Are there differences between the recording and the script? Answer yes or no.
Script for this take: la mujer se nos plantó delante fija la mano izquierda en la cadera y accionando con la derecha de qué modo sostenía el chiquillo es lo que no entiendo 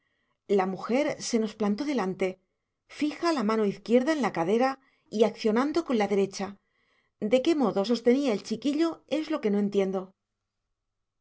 no